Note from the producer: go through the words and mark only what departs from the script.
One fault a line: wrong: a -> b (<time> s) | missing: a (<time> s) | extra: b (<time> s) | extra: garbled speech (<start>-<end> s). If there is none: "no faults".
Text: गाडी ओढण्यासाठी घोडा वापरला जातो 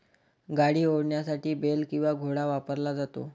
extra: बेल किंवा (1.6 s)